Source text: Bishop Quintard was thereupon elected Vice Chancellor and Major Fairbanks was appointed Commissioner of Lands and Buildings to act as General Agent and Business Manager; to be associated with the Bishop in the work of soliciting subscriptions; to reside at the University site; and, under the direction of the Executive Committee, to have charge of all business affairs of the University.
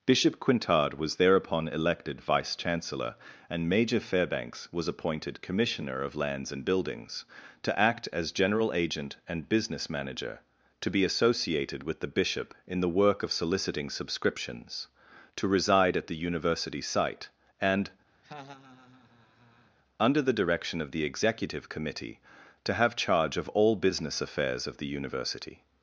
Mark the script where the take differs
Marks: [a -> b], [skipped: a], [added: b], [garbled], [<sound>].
Bishop Quintard was thereupon elected Vice Chancellor and Major Fairbanks was appointed Commissioner of Lands and Buildings to act as General Agent and Business Manager; to be associated with the Bishop in the work of soliciting subscriptions; to reside at the University site; and, [laugh] under the direction of the Executive Committee, to have charge of all business affairs of the University.